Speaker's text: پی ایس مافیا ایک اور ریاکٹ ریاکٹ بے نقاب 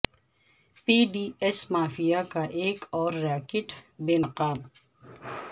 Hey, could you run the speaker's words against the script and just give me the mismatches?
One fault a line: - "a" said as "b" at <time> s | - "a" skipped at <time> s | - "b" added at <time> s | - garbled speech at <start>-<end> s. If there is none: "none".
- "ڈی" added at 1.1 s
- "کا" added at 2.3 s
- "ریاکٹ" skipped at 3.7 s